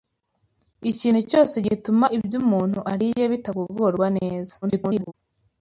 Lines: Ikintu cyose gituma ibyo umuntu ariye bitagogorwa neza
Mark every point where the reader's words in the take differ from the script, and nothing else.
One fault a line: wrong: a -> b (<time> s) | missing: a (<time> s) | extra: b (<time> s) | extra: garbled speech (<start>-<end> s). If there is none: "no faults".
extra: garbled speech (4.6-5.1 s)